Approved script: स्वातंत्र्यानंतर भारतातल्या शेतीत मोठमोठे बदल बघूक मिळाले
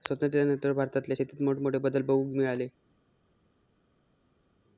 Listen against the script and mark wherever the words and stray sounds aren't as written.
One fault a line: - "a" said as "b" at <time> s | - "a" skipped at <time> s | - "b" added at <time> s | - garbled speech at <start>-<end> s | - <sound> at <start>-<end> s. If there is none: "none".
none